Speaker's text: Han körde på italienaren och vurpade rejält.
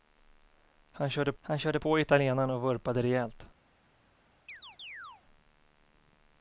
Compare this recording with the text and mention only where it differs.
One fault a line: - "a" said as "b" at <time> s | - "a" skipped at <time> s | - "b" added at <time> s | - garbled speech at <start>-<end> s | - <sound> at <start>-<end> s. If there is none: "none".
- "han körde" added at 1.4 s
- chirp at 4.5-5.2 s